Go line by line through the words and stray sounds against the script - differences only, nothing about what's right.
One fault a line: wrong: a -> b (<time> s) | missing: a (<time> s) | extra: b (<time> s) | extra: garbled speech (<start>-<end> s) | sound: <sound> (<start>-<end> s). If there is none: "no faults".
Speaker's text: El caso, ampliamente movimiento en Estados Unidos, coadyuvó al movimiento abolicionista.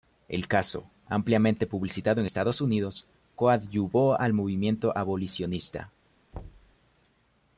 wrong: movimiento -> publicitado (1.7 s)
sound: thud (6.3-6.8 s)